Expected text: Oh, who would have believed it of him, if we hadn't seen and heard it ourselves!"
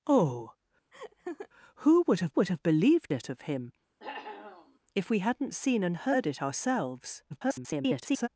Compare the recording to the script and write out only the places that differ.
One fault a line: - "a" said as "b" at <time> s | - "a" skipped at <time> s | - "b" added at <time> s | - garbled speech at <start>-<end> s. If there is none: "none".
- "would have" added at 2.4 s
- garbled speech at 7.3-8.3 s